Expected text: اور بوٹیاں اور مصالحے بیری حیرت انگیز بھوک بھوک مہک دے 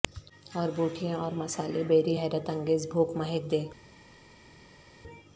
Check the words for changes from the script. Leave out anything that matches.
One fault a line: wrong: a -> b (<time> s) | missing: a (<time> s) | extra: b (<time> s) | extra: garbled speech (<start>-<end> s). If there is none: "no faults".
missing: بھوک (3.1 s)